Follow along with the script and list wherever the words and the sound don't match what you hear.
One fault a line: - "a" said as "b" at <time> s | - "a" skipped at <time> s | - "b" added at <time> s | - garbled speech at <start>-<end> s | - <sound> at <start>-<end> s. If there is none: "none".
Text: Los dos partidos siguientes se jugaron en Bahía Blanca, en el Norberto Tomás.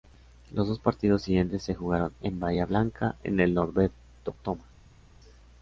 none